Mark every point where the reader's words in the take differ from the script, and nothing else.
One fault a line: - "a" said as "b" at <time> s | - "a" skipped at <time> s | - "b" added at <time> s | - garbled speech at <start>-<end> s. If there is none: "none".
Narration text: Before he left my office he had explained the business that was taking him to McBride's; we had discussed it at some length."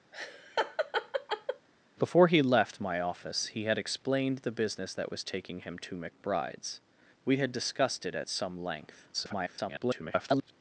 - garbled speech at 9.1-10.5 s